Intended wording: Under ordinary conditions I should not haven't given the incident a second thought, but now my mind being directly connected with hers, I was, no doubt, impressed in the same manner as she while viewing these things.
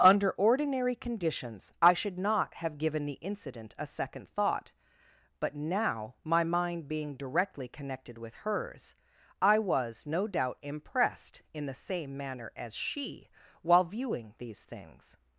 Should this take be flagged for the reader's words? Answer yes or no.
yes